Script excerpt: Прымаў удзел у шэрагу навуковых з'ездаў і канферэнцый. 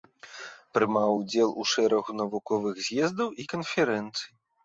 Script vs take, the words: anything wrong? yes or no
no